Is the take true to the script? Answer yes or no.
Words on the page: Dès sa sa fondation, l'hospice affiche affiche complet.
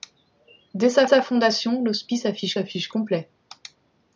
yes